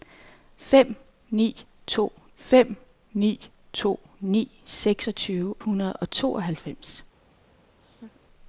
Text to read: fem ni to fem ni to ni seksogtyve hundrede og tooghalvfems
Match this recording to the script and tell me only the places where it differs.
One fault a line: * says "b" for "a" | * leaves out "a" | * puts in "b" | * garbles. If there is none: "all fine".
all fine